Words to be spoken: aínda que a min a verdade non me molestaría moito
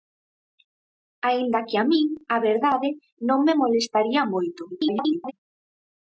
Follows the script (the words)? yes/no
no